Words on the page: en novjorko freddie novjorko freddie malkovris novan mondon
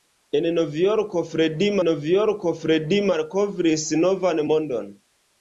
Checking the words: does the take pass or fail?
pass